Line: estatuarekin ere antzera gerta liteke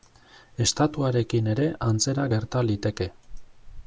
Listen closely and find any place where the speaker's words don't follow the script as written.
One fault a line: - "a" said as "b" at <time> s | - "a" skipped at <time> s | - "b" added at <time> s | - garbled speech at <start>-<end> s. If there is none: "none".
none